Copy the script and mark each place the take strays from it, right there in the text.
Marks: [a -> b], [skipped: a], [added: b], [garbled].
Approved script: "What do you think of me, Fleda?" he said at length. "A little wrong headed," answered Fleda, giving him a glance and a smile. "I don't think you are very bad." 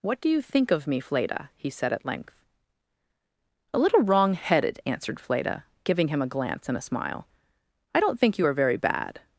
"What do you think of me, Fleda?" he said at length. "A little wrong headed," answered Fleda, giving him a glance and a smile. "I don't think you are very bad."